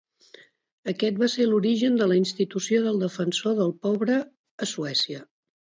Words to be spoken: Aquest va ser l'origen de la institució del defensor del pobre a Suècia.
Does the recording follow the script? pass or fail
pass